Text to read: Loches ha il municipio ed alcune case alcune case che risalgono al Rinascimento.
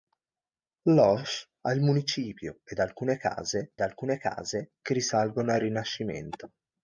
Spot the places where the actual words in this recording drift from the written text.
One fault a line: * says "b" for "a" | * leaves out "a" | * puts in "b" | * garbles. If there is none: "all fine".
all fine